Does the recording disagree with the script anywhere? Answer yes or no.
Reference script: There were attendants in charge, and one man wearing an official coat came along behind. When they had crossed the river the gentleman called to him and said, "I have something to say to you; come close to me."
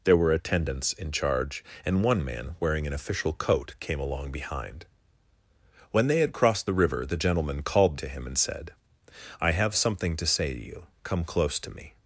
no